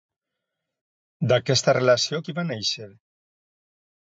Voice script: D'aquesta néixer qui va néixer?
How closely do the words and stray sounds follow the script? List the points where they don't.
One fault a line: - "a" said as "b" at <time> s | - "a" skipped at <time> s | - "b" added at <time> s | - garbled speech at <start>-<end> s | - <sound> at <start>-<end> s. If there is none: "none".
- "néixer" said as "relació" at 1.8 s